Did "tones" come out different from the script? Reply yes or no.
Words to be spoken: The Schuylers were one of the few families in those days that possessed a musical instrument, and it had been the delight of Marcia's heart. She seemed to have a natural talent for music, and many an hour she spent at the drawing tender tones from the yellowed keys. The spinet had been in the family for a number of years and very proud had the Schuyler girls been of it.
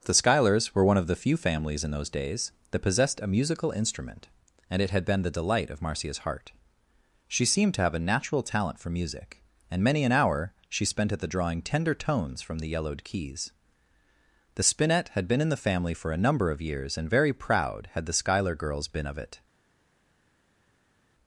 no